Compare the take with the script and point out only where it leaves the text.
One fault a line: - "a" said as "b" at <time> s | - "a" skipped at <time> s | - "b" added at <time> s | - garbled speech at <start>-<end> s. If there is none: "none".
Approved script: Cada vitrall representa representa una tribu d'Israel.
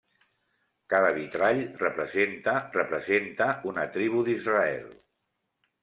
none